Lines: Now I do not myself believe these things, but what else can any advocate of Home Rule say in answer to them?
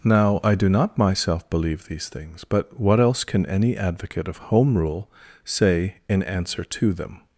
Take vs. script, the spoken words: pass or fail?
pass